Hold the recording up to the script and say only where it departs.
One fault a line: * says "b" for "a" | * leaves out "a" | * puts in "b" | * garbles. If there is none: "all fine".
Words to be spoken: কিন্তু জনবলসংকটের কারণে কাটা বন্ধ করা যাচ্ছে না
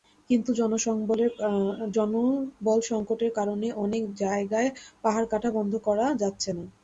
* puts in "অনেক জায়গায় পাহাড়"